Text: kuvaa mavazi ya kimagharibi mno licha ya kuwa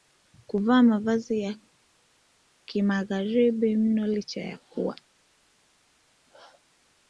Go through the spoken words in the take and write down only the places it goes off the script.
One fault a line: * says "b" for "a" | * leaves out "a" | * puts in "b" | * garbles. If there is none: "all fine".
all fine